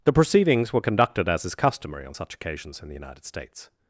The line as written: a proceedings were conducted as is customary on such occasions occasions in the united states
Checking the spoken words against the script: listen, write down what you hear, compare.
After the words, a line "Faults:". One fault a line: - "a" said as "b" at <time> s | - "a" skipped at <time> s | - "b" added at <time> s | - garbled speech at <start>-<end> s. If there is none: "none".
the proceedings were conducted as is customary on such occasions in the united states
Faults:
- "a" said as "the" at 0.0 s
- "occasions" skipped at 2.8 s